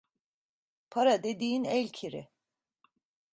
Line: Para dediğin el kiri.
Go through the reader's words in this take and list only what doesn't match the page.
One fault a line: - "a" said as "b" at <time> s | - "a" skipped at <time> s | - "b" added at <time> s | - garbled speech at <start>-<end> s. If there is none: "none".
none